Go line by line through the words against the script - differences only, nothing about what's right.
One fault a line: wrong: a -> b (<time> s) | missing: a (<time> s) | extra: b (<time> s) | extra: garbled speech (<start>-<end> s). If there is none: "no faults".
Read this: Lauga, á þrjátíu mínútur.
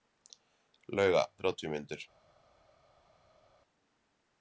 no faults